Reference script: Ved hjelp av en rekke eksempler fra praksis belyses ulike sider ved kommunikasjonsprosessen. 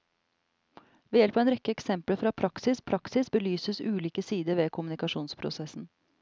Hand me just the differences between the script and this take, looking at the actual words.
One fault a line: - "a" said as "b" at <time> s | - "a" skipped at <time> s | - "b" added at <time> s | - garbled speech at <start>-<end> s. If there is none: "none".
- "praksis" added at 2.8 s